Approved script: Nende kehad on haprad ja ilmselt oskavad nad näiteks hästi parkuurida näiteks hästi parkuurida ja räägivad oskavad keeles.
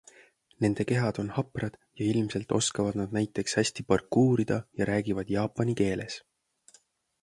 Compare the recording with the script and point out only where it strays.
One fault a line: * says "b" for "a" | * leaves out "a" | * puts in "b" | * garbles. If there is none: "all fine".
* leaves out "näiteks hästi parkuurida"
* says "jaapani" for "oskavad"